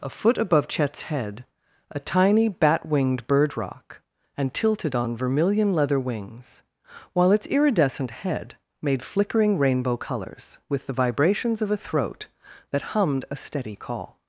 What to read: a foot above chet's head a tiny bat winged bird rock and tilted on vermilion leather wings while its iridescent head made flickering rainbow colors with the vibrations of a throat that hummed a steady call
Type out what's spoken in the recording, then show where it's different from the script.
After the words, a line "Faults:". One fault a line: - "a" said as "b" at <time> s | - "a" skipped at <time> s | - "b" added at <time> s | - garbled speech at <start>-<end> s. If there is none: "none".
a foot above chet's head a tiny bat winged bird rock and tilted on vermilion leather wings while its iridescent head made flickering rainbow colors with the vibrations of a throat that hummed a steady call
Faults:
none